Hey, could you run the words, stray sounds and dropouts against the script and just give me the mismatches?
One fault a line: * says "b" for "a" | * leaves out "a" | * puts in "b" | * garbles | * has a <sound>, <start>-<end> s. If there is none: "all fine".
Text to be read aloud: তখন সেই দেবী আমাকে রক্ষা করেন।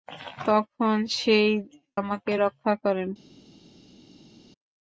* leaves out "দেবী"